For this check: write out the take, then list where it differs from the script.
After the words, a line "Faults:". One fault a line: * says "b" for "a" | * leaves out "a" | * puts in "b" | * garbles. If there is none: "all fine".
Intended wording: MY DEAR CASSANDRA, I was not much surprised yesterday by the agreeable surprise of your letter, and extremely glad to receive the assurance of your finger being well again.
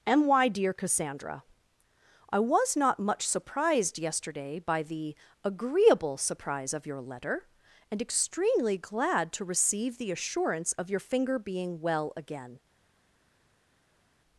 MY DEAR CASSANDRA, I was not much surprised yesterday by the agreeable surprise of your letter, and extremely glad to receive the assurance of your finger being well again.
Faults:
all fine